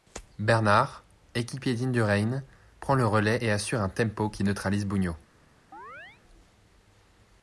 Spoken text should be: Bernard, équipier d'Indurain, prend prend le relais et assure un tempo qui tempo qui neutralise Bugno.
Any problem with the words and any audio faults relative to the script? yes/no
yes